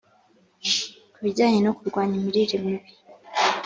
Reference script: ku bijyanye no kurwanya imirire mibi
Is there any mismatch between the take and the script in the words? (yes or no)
no